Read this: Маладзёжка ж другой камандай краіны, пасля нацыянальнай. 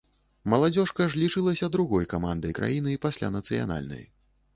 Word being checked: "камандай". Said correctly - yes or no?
yes